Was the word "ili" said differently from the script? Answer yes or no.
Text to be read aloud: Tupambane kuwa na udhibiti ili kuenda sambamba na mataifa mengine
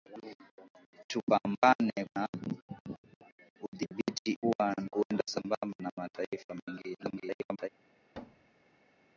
yes